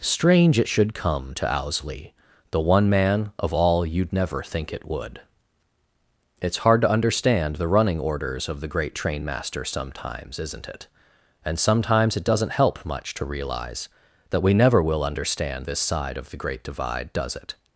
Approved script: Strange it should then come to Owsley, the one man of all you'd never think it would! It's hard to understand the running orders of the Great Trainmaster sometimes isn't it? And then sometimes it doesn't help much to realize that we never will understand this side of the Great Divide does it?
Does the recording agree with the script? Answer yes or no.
no